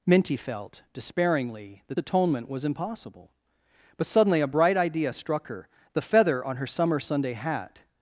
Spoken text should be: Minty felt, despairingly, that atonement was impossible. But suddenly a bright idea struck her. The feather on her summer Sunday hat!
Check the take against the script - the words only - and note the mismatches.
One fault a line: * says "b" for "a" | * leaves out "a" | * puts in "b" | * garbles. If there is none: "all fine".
all fine